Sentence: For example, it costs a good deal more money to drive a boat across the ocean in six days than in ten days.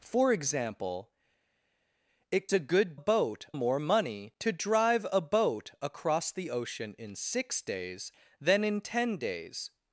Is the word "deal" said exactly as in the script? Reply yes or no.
no